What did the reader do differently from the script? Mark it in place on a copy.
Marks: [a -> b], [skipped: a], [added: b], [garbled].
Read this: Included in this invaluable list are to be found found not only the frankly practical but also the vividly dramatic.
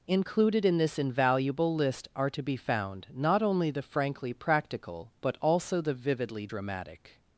Included in this invaluable list are to be found [skipped: found] not only the frankly practical but also the vividly dramatic.